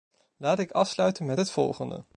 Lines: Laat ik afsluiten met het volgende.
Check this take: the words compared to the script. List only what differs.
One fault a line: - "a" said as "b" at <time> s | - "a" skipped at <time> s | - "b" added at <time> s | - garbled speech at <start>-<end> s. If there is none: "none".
none